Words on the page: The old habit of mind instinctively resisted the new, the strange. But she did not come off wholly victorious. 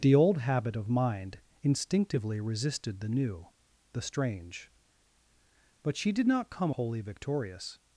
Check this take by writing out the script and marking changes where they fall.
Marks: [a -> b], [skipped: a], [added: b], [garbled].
The old habit of mind instinctively resisted the new, the strange. But she did not come [skipped: off] wholly victorious.